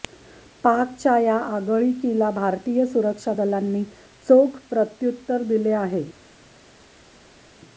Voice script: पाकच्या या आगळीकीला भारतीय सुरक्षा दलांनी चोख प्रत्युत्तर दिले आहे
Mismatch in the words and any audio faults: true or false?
false